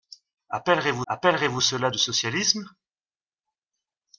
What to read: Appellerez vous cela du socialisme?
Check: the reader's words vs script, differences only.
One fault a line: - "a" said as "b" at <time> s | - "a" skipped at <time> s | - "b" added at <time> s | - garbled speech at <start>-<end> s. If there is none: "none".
- "appellerez vous" added at 1.1 s